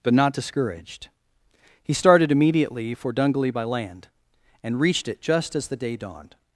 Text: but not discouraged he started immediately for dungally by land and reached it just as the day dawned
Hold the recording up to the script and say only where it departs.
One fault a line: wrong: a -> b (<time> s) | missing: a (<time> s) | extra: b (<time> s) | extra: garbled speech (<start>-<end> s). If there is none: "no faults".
no faults